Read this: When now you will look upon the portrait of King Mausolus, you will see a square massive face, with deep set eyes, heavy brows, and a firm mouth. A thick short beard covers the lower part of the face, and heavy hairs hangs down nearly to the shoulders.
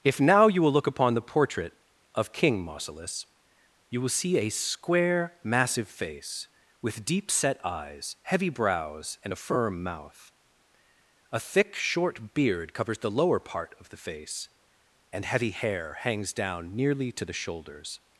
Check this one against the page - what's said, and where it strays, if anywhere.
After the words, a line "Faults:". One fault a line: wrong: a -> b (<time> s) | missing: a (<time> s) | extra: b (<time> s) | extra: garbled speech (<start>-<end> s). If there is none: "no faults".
If now you will look upon the portrait of King Mausolus, you will see a square massive face, with deep set eyes, heavy brows, and a firm mouth. A thick short beard covers the lower part of the face, and heavy hair hangs down nearly to the shoulders.
Faults:
wrong: When -> If (0.0 s)
wrong: hairs -> hair (15.5 s)